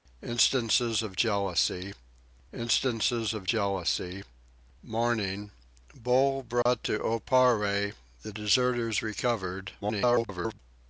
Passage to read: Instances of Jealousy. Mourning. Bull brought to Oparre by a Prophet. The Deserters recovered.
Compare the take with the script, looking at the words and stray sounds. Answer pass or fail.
fail